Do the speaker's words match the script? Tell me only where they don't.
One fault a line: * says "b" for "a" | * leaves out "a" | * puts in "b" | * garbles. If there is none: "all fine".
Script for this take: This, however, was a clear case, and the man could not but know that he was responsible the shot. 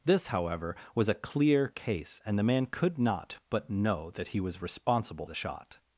all fine